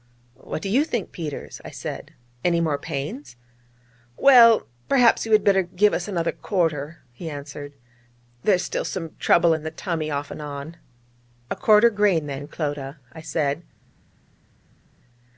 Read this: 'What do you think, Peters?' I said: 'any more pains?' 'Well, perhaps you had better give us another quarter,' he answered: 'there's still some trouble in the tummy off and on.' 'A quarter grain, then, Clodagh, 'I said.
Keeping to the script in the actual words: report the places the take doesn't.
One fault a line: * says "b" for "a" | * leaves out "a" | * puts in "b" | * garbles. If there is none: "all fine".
all fine